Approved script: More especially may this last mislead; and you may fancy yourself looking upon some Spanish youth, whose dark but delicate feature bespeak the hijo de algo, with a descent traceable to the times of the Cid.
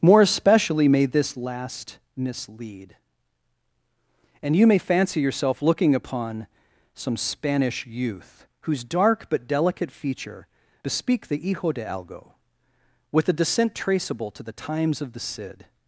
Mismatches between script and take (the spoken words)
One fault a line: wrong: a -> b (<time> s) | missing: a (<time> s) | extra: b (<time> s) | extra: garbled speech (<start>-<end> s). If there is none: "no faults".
no faults